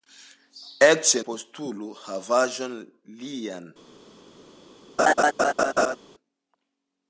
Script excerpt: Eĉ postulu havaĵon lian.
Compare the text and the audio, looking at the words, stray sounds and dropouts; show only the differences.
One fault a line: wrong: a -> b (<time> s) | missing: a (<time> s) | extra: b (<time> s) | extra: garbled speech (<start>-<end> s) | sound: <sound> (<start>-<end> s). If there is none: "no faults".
sound: laugh (5.0-6.0 s)